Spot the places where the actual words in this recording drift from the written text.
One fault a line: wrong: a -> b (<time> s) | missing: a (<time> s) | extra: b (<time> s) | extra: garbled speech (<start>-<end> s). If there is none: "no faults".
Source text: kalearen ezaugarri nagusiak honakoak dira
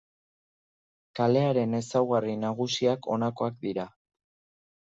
no faults